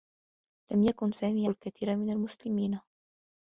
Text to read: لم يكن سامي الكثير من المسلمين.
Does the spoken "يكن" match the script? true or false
true